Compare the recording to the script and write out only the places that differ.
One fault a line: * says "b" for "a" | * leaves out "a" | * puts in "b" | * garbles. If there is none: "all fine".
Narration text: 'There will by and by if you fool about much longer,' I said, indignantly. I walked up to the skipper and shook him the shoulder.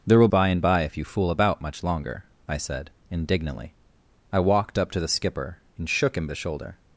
all fine